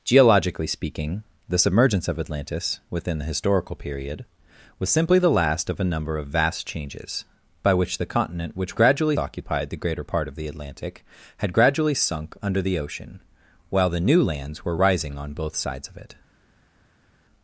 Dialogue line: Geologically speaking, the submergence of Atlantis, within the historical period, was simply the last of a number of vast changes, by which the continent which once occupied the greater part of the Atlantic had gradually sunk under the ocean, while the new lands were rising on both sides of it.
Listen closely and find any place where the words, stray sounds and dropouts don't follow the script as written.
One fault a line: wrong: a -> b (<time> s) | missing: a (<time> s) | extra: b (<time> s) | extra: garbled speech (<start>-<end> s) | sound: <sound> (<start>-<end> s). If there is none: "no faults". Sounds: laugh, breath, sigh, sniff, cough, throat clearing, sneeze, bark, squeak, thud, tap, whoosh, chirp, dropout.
wrong: once -> gradually (8.8 s)